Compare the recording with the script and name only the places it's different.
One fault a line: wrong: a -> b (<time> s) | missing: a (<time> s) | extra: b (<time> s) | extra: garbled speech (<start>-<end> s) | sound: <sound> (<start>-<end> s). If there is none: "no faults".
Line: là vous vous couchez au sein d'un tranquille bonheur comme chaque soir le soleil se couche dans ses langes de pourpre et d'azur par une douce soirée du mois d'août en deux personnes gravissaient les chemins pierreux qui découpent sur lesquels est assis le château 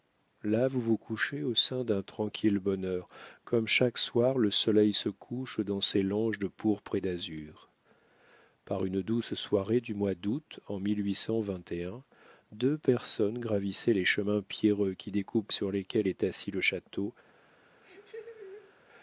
sound: laugh (17.8-18.7 s)